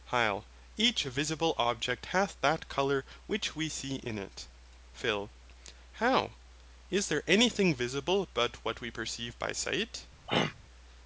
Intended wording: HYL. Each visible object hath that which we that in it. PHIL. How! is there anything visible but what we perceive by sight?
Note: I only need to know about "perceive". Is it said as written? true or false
true